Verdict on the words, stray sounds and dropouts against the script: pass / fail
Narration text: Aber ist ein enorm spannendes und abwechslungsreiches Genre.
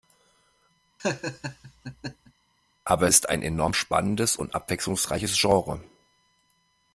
fail